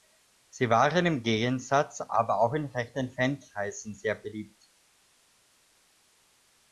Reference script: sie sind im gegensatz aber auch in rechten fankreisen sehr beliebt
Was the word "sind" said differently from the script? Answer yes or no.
yes